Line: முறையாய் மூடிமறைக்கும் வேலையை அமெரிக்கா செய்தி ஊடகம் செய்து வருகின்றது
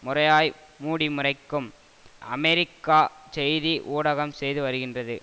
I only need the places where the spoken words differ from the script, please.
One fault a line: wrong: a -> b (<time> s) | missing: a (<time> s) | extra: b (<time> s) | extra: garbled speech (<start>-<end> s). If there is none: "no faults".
missing: வேலையை (1.7 s)